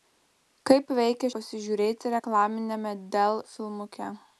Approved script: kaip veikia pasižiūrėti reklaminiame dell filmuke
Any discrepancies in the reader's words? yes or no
no